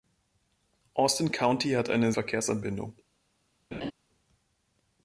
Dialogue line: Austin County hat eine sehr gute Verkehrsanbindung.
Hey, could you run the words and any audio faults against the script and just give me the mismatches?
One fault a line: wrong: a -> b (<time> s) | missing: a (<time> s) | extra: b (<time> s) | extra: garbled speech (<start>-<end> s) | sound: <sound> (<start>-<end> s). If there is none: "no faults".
missing: sehr gute (2.1 s)
sound: laugh (3.7-3.9 s)